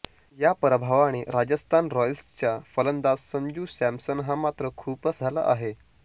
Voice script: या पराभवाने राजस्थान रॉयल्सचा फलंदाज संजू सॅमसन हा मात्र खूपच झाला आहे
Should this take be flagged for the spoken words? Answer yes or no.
no